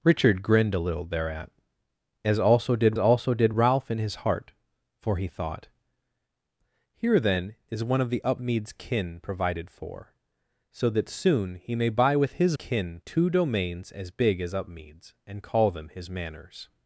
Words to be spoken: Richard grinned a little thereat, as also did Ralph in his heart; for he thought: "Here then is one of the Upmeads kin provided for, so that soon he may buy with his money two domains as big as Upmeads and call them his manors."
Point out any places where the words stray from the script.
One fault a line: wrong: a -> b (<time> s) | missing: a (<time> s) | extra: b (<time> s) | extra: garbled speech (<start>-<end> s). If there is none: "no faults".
extra: also did (3.0 s)
wrong: money -> kin (12.5 s)